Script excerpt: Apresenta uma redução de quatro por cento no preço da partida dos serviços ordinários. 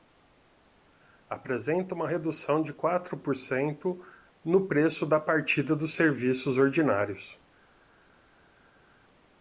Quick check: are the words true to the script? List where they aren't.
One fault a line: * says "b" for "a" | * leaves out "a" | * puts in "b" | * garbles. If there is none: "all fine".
all fine